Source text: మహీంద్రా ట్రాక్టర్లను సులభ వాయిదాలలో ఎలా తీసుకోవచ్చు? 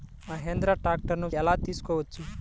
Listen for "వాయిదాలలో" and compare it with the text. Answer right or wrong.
wrong